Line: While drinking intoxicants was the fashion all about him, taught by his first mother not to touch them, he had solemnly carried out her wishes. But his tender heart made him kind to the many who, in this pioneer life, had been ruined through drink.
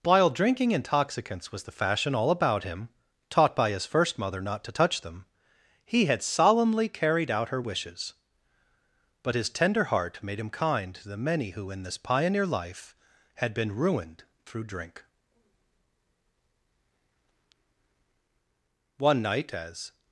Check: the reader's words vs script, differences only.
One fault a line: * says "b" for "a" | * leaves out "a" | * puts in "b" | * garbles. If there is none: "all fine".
* puts in "One night as"